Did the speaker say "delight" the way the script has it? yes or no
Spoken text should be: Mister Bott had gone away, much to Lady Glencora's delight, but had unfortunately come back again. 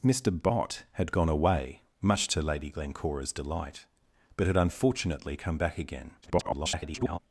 yes